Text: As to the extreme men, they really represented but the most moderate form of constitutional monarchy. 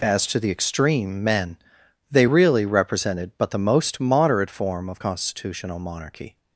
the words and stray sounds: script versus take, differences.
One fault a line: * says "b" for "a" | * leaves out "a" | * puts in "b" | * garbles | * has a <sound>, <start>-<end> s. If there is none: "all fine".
all fine